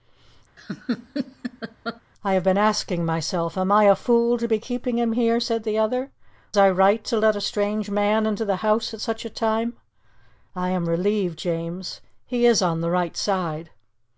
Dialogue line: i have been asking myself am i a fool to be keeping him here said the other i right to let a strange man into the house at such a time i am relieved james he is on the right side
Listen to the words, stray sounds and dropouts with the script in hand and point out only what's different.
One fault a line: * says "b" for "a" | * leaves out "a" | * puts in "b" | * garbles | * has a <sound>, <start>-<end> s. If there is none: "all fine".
* has a laugh, 0.6-2.0 s